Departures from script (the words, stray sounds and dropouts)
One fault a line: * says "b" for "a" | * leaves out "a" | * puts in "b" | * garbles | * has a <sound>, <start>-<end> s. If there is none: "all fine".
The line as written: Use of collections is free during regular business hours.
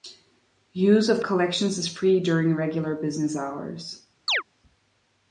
* has a chirp, 4.3-4.4 s